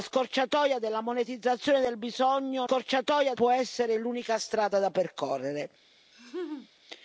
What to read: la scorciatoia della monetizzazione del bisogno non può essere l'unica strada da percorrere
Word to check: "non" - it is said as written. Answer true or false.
false